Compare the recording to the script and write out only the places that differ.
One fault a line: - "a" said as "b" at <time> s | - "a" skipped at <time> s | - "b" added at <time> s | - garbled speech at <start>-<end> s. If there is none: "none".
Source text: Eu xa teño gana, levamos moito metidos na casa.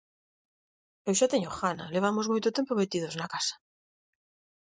- "tempo" added at 2.6 s